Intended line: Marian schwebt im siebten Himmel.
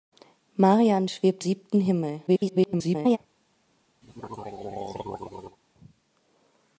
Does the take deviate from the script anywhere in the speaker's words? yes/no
yes